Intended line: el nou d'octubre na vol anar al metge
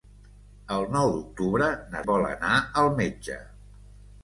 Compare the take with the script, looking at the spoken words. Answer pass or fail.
pass